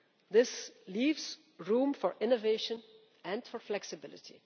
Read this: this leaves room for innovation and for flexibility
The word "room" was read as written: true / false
true